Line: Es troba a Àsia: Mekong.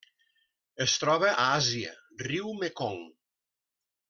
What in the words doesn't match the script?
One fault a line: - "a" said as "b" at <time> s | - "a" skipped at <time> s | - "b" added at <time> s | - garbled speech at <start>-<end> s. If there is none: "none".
- "riu" added at 2.3 s